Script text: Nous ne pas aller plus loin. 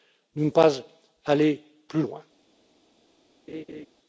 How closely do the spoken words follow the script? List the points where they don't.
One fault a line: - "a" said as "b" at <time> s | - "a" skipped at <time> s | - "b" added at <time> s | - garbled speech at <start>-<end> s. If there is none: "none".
none